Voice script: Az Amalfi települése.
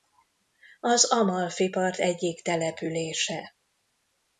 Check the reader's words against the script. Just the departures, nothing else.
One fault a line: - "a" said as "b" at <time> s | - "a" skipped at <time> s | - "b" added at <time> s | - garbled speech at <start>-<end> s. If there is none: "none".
- "part egyik" added at 1.7 s